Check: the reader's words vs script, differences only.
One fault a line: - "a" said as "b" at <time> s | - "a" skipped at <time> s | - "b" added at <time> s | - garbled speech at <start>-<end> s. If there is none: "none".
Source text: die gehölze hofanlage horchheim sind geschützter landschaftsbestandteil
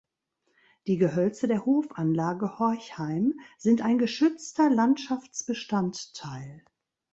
- "der" added at 1.5 s
- "ein" added at 3.8 s